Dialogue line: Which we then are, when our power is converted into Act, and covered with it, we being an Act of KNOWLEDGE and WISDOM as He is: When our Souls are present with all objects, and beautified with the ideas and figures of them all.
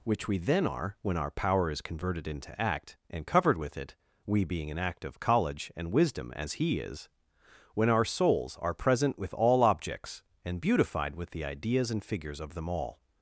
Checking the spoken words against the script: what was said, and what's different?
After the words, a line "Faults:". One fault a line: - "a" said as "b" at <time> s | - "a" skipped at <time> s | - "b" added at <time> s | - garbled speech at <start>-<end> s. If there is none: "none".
Which we then are, when our power is converted into Act, and covered with it, we being an Act of College and WISDOM as He is: When our Souls are present with all objects, and beautified with the ideas and figures of them all.
Faults:
- "KNOWLEDGE" said as "College" at 5.2 s